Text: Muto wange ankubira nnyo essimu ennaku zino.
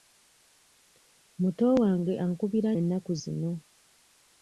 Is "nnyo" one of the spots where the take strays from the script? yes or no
yes